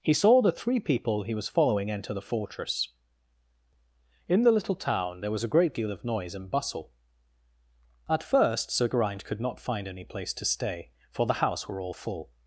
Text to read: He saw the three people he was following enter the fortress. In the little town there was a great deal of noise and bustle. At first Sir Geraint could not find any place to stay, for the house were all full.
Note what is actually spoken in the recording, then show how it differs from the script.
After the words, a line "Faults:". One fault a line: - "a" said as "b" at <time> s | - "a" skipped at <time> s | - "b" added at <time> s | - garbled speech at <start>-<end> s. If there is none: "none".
He saw the three people he was following enter the fortress. In the little town there was a great deal of noise and bustle. At first Sir Geraint could not find any place to stay, for the house were all full.
Faults:
none